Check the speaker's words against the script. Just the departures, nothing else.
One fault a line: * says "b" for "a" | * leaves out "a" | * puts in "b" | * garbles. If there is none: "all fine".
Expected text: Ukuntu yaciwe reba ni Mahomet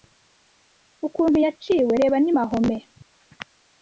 all fine